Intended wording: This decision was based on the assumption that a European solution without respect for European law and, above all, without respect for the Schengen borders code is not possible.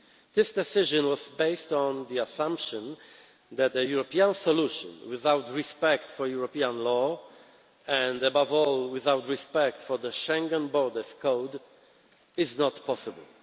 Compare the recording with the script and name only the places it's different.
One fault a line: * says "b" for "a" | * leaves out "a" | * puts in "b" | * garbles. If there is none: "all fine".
all fine